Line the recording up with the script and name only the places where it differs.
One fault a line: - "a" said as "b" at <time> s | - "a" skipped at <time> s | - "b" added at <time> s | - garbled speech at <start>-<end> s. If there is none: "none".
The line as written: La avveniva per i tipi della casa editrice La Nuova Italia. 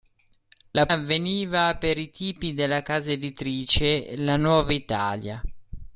none